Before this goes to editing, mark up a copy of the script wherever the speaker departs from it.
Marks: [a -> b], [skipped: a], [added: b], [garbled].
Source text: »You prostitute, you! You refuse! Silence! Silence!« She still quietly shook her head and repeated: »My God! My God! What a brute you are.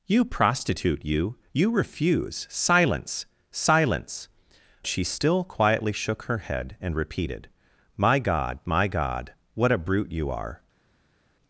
»You prostitute, you! You refuse! Silence! Silence!« She still quietly shook her head and repeated: »My God! My God! What a brute you are.